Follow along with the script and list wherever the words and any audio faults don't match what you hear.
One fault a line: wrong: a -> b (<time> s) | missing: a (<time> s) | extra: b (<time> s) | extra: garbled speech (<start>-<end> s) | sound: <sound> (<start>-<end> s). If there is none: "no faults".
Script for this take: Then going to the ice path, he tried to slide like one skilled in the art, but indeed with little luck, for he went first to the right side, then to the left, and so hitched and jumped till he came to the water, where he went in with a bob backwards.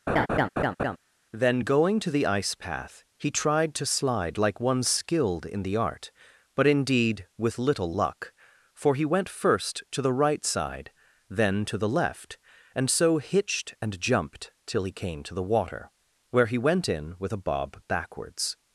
sound: laugh (0.1-1.0 s)